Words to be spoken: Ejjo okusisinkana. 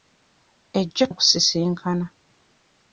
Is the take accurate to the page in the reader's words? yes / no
yes